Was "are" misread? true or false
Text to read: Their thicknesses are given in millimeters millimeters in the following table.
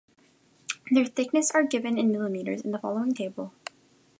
false